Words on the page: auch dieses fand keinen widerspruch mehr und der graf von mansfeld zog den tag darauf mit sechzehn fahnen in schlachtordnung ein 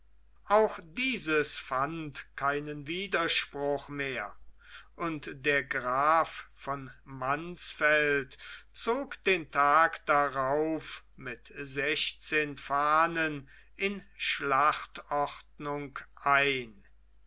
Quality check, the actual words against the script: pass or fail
pass